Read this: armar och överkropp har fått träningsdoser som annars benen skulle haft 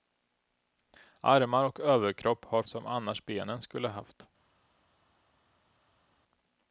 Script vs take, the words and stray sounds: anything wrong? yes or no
yes